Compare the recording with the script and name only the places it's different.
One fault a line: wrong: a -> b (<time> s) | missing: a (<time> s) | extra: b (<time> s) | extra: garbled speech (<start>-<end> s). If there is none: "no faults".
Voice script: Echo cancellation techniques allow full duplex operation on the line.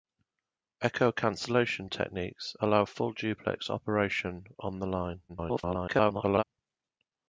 extra: garbled speech (5.3-6.4 s)